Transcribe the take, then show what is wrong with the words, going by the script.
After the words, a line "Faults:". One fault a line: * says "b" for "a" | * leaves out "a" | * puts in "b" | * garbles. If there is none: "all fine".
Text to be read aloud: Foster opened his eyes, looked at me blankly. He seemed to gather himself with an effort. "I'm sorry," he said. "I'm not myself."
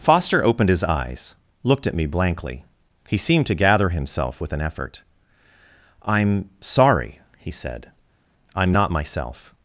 Foster opened his eyes, looked at me blankly. He seemed to gather himself with an effort. "I'm sorry," he said. "I'm not myself."
Faults:
all fine